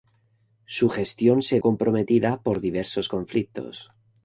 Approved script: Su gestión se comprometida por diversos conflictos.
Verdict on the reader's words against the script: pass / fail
pass